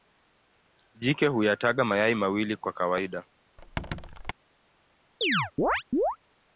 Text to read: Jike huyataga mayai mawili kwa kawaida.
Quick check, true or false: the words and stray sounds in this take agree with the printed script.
false